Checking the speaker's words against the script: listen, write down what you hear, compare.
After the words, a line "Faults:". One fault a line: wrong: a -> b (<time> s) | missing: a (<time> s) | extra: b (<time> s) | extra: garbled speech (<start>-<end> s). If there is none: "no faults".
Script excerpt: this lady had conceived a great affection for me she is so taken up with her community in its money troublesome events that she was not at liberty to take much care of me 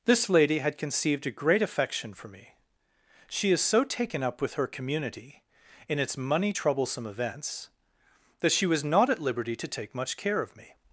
this lady had conceived a great affection for me she is so taken up with her community in its money troublesome events that she was not at liberty to take much care of me
Faults:
no faults